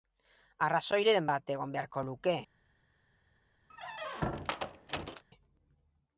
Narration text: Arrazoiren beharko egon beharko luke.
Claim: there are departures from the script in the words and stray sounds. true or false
true